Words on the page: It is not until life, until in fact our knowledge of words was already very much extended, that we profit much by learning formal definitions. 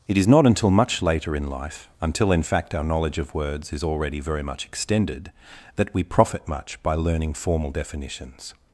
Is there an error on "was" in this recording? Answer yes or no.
yes